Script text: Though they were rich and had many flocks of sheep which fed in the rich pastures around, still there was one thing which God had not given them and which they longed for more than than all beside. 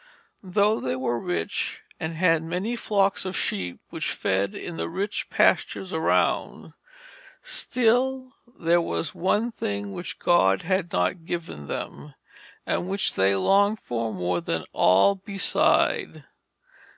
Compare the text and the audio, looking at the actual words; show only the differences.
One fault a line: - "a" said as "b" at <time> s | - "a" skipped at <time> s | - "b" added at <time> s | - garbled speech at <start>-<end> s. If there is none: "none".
- "than" skipped at 14.7 s